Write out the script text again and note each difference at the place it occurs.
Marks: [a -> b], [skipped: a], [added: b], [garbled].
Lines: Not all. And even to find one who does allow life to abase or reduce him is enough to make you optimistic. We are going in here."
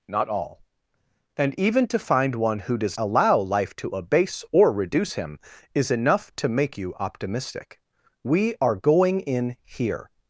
Not all. And even to find one who does allow life to abase or reduce him is enough to make you optimistic. We are going in here."